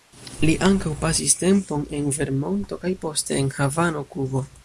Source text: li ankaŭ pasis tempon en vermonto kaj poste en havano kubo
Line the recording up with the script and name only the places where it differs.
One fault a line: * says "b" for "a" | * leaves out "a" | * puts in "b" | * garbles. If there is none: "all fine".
all fine